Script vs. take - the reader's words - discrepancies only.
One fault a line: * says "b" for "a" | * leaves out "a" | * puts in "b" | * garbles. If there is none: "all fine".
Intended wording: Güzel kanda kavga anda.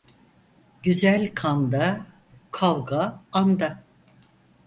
all fine